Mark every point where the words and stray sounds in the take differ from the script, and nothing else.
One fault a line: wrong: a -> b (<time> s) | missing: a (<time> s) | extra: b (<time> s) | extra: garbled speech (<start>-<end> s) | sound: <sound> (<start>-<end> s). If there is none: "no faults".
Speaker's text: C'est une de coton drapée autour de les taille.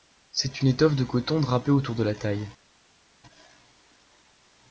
extra: étoffe (0.7 s)
wrong: les -> la (2.0 s)